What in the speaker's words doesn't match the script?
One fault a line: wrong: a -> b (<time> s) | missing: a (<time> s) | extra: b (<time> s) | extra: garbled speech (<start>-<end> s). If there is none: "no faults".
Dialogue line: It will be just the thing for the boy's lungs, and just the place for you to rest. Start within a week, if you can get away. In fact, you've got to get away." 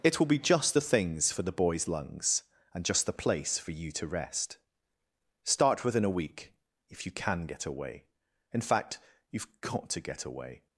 wrong: thing -> things (0.8 s)